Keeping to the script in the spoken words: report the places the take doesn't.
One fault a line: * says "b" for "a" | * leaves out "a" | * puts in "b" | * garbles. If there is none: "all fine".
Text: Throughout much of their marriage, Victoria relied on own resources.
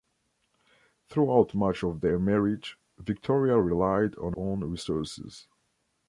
all fine